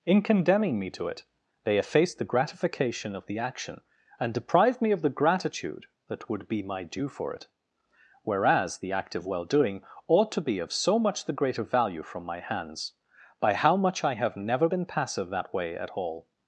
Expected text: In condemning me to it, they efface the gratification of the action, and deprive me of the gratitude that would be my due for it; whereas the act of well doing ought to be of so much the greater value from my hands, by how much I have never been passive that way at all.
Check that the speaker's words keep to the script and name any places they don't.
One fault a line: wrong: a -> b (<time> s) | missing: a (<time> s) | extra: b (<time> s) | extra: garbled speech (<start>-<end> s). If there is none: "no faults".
no faults